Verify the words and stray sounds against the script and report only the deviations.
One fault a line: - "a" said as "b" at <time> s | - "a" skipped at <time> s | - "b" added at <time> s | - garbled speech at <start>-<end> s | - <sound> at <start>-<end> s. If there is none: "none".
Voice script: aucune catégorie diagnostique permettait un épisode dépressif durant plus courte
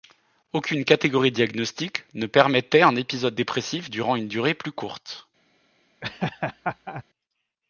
- "ne" added at 2.1 s
- "une durée" added at 4.1 s
- laugh at 6.0-7.0 s